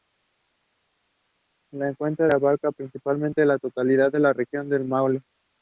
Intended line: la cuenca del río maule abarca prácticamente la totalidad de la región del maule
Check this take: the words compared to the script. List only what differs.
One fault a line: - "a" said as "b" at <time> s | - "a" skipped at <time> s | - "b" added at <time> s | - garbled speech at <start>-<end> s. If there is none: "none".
- "del río maule" skipped at 2.3 s